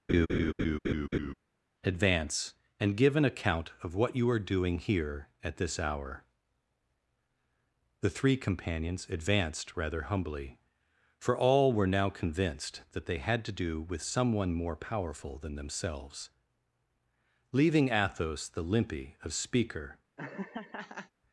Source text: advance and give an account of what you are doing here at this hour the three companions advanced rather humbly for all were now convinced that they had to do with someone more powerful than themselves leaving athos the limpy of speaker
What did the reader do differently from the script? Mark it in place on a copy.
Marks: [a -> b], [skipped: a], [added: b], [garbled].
advance and give an account of what you are doing here at this hour the three companions advanced rather humbly for all were now convinced that they had to do with someone more powerful than themselves leaving athos the limpy of speaker